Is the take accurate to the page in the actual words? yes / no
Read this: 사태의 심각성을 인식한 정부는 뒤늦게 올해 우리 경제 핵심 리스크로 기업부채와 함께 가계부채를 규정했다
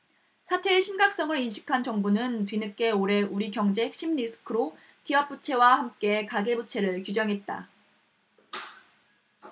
yes